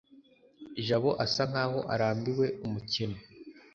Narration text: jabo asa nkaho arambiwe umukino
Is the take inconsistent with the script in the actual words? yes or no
no